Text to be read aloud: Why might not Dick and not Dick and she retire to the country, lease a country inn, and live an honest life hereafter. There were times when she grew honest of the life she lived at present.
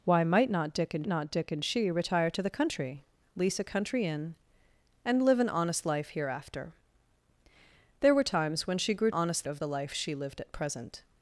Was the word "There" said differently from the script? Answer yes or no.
no